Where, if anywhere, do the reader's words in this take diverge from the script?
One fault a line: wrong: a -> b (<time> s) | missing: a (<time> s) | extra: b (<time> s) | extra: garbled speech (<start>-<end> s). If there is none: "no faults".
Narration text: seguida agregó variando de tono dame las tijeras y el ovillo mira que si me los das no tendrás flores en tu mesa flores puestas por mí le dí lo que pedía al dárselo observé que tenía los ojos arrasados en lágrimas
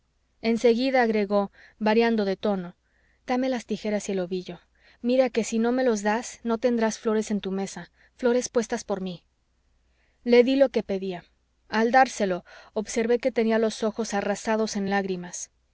extra: no (5.6 s)